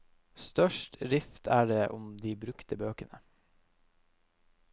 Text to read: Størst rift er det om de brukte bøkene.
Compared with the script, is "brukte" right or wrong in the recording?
right